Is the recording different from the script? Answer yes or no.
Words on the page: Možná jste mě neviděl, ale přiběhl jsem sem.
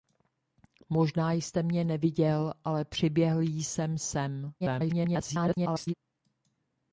yes